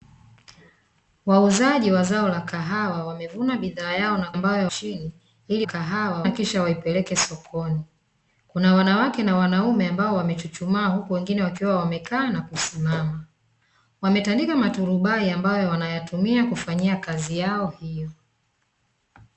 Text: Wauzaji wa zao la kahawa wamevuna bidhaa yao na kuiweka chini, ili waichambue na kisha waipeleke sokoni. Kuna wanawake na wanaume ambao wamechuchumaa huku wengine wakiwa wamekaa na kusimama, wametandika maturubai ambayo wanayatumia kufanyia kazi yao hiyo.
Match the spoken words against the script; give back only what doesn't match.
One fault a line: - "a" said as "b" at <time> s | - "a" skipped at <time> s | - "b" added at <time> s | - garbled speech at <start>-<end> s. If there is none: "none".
- "kuiweka" said as "ambayo" at 4.3 s
- "waichambue" said as "kahawa" at 5.6 s